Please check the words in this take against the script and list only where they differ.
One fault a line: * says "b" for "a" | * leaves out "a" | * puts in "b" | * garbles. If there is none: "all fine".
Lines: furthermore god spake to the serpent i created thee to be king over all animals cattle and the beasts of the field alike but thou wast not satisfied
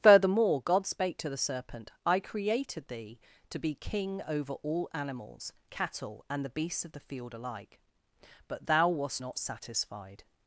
all fine